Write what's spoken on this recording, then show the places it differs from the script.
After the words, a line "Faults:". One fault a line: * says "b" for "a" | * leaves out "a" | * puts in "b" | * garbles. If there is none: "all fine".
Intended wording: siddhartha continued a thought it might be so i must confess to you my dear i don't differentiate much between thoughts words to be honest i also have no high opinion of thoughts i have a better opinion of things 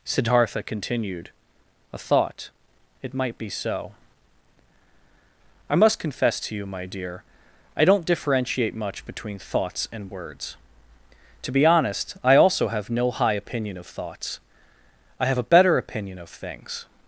siddhartha continued a thought it might be so i must confess to you my dear i don't differentiate much between thoughts and words to be honest i also have no high opinion of thoughts i have a better opinion of things
Faults:
* puts in "and"